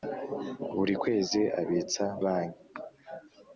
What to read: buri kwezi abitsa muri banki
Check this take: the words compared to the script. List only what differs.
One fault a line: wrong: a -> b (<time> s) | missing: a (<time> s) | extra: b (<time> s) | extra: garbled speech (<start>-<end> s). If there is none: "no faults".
missing: muri (2.0 s)